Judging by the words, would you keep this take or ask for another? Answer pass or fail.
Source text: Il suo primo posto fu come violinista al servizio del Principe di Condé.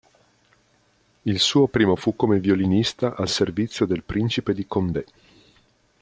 fail